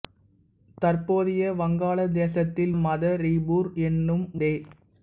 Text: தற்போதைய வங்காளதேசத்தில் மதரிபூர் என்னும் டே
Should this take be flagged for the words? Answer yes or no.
no